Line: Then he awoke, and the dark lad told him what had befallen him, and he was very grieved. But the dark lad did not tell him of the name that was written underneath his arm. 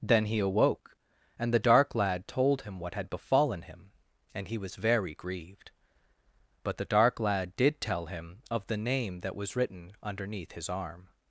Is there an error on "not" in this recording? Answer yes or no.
yes